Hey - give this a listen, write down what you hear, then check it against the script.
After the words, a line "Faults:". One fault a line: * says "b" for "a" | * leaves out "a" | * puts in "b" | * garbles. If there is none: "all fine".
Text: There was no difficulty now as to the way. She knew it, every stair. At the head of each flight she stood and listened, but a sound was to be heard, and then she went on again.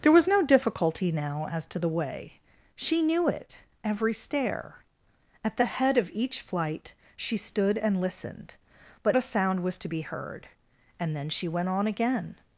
There was no difficulty now as to the way. She knew it, every stair. At the head of each flight she stood and listened, but a sound was to be heard, and then she went on again.
Faults:
all fine